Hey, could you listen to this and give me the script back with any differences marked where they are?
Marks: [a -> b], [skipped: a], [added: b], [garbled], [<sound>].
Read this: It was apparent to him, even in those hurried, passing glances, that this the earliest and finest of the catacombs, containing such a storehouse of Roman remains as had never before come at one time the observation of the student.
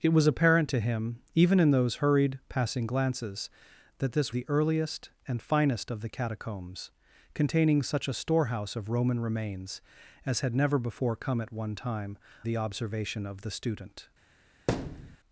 It was apparent to him, even in those hurried, passing glances, that this the earliest and finest of the catacombs, containing such a storehouse of Roman remains as had never before come at one time the observation of the student. [thud]